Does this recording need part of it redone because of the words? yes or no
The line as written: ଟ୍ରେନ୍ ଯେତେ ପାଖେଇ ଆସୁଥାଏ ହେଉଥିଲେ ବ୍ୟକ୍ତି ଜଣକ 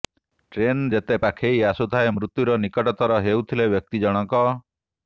yes